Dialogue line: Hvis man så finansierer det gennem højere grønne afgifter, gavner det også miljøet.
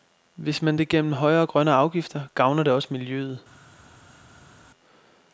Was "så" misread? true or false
true